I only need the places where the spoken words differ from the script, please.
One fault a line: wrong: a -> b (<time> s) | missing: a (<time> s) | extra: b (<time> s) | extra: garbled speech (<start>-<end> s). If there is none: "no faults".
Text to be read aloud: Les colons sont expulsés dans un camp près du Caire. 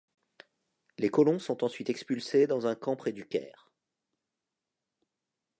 extra: ensuite (1.6 s)